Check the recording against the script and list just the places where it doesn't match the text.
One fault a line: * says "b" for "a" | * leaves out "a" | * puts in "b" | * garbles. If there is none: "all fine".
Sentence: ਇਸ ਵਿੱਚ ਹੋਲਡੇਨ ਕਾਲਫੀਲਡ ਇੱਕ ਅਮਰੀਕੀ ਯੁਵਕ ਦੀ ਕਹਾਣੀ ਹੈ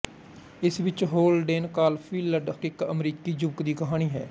all fine